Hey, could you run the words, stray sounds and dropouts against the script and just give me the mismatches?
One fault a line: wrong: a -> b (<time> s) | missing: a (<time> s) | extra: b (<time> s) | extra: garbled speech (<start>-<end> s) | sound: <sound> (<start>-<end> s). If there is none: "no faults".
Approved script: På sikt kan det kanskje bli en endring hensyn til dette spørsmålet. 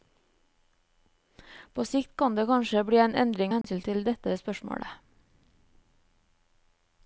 sound: dropout (3.6-3.6 s)